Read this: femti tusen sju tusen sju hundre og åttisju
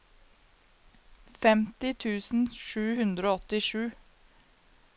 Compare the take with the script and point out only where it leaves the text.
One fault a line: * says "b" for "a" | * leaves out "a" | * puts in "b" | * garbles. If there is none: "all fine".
* leaves out "tusen sju"